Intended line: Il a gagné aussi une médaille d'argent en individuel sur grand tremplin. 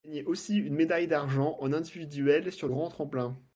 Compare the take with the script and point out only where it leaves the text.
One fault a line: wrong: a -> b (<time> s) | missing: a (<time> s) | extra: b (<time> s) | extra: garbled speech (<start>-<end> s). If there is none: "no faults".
no faults